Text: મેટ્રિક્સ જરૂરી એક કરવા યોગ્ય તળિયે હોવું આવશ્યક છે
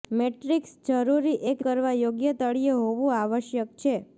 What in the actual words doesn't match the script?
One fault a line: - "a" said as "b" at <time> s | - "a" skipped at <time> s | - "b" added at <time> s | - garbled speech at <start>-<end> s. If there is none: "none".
none